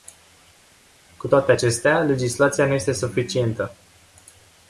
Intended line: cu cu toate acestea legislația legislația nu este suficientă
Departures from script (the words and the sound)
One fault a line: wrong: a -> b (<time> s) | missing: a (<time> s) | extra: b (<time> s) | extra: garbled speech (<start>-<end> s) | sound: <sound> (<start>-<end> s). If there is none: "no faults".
missing: cu (1.3 s)
missing: legislația (2.7 s)